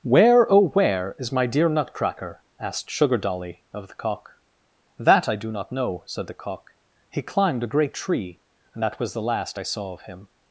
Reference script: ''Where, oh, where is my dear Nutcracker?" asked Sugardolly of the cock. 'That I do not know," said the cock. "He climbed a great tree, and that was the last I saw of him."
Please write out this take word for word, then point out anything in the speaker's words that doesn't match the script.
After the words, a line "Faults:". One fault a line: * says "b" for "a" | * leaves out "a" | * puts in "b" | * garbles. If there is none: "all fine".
''Where, oh, where is my dear Nutcracker?" asked Sugardolly of the cock. 'That I do not know," said the cock. "He climbed a great tree, and that was the last I saw of him."
Faults:
all fine